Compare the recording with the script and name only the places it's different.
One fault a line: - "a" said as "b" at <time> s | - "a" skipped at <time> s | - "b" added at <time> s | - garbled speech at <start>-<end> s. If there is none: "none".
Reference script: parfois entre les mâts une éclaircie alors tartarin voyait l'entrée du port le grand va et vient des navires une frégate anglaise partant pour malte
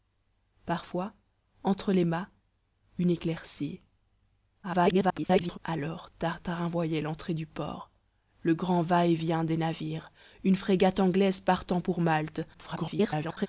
- garbled speech at 4.6-5.6 s
- garbled speech at 12.5-13.5 s